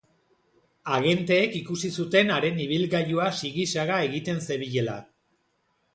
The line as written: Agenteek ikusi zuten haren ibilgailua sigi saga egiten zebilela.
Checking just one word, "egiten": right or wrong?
right